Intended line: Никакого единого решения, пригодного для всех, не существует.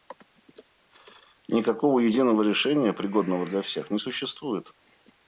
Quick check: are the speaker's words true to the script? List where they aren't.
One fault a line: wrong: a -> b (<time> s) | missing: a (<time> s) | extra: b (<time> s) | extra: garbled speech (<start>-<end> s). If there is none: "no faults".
no faults